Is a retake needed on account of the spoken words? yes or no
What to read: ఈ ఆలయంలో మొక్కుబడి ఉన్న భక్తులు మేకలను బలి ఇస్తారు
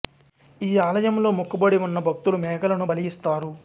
no